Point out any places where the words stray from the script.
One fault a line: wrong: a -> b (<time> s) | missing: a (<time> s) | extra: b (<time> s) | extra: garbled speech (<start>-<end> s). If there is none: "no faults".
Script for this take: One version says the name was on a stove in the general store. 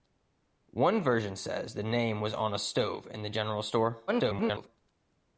extra: garbled speech (4.1-4.7 s)